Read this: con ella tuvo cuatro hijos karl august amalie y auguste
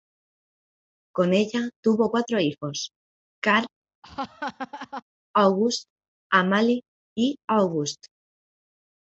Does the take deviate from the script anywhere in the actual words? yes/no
no